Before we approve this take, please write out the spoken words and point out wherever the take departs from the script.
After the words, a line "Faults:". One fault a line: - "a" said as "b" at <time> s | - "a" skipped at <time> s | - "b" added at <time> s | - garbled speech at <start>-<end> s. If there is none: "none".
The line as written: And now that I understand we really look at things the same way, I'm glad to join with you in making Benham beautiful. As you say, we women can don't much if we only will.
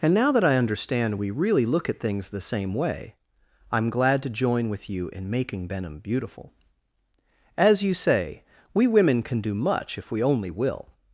And now that I understand we really look at things the same way, I'm glad to join with you in making Benham beautiful. As you say, we women can do much if we only will.
Faults:
- "don't" said as "do" at 9.4 s